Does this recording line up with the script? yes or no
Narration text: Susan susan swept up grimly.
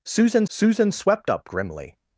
yes